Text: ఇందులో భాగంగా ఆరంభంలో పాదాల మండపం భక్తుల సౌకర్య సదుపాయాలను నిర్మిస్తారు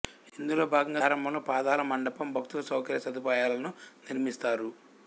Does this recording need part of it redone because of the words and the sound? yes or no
no